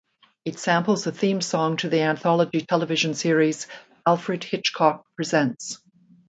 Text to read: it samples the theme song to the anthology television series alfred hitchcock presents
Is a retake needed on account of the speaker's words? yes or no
no